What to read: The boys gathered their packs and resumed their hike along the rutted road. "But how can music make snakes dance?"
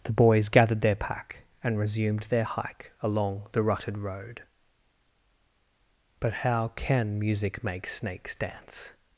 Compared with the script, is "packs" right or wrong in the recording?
wrong